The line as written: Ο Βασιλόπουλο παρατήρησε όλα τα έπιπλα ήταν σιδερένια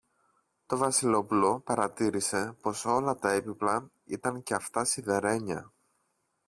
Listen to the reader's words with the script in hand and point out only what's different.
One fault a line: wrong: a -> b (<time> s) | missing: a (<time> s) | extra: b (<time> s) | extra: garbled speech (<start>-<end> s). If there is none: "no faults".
wrong: Ο -> Το (0.7 s)
extra: πως (2.6 s)
extra: και αυτά (4.4 s)